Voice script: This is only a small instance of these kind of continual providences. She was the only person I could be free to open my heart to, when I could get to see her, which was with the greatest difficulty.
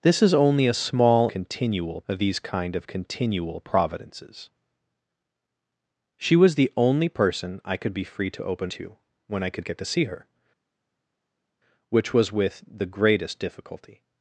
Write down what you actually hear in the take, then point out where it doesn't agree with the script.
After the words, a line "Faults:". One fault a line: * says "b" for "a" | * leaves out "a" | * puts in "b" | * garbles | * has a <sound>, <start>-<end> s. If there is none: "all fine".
This is only a small continual of these kind of continual providences. She was the only person I could be free to open to, when I could get to see her, which was with the greatest difficulty.
Faults:
* says "continual" for "instance"
* leaves out "my heart"